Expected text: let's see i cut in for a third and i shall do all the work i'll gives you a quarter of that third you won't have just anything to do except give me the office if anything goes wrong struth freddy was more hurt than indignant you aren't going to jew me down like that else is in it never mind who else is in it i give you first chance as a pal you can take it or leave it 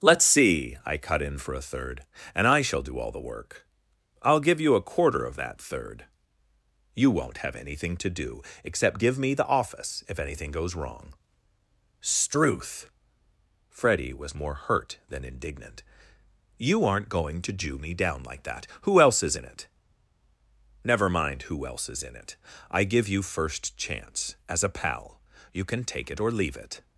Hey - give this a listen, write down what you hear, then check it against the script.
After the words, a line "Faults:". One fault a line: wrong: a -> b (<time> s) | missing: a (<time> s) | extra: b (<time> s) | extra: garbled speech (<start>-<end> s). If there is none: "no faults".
let's see i cut in for a third and i shall do all the work i'll give you a quarter of that third you won't have anything to do except give me the office if anything goes wrong struth freddy was more hurt than indignant you aren't going to jew me down like that who else is in it never mind who else is in it i give you first chance as a pal you can take it or leave it
Faults:
wrong: gives -> give (4.4 s)
missing: just (7.5 s)
extra: who (18.8 s)